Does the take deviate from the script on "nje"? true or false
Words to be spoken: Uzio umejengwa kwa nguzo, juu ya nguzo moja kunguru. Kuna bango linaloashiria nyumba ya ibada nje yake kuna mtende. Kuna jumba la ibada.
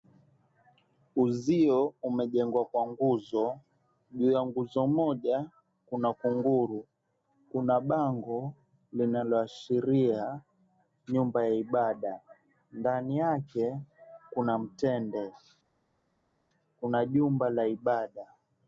true